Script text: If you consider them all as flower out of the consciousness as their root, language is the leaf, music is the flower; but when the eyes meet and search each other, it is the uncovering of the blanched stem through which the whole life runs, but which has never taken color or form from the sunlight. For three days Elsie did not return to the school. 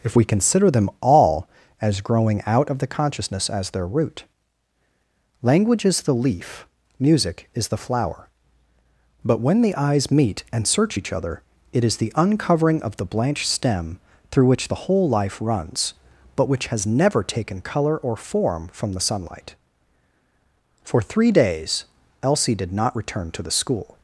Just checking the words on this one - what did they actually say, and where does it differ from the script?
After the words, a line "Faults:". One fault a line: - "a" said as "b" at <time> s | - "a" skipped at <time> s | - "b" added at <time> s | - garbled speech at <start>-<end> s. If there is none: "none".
If we consider them all as growing out of the consciousness as their root, language is the leaf, music is the flower; but when the eyes meet and search each other, it is the uncovering of the blanched stem through which the whole life runs, but which has never taken color or form from the sunlight. For three days Elsie did not return to the school.
Faults:
- "you" said as "we" at 0.2 s
- "flower" said as "growing" at 2.0 s